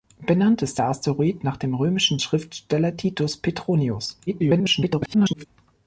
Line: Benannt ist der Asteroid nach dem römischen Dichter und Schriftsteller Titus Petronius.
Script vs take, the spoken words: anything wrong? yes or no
yes